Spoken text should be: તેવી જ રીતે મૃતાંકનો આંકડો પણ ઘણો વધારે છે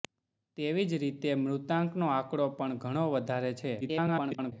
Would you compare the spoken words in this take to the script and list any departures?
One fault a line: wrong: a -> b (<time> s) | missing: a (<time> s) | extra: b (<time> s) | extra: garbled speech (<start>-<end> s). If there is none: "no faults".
extra: garbled speech (3.8-4.5 s)